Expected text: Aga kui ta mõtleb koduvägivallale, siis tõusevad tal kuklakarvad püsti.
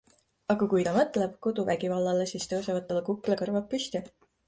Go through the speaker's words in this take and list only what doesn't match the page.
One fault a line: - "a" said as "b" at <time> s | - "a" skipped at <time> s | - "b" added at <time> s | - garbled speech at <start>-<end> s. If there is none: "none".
none